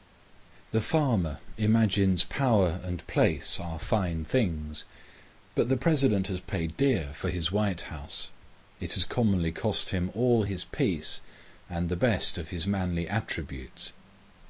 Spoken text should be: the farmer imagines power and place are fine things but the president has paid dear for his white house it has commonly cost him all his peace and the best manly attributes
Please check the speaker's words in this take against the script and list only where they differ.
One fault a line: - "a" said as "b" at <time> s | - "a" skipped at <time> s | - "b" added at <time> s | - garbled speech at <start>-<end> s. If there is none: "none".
- "of his" added at 12.4 s